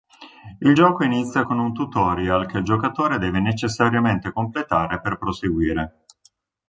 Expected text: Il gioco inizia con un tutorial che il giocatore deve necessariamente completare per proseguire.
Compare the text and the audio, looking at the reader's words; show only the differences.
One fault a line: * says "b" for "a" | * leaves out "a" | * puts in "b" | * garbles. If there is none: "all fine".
all fine